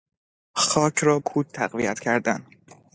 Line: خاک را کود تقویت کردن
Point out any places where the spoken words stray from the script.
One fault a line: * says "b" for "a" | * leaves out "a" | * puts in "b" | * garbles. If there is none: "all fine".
all fine